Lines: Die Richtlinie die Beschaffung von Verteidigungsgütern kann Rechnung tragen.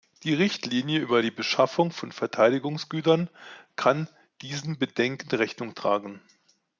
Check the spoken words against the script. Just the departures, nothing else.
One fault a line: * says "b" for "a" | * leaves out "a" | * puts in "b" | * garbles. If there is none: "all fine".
* puts in "über"
* puts in "diesen Bedenken"